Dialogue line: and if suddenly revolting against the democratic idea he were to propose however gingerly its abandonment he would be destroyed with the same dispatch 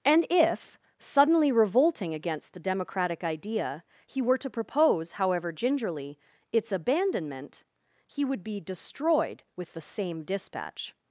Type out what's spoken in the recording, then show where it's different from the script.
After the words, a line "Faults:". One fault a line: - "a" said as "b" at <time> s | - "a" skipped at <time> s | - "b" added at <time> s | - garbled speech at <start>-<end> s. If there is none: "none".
and if suddenly revolting against the democratic idea he were to propose however gingerly its abandonment he would be destroyed with the same dispatch
Faults:
none